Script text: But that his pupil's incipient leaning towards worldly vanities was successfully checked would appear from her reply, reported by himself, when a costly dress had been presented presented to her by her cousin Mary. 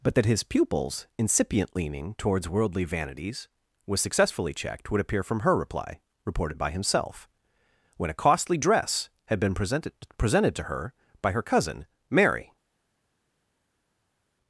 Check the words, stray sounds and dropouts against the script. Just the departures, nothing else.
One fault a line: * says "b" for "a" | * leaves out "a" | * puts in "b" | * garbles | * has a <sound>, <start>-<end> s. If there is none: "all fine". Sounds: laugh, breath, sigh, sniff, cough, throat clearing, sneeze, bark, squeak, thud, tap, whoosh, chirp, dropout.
all fine